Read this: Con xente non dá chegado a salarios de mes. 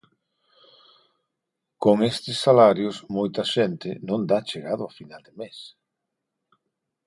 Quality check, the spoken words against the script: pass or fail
fail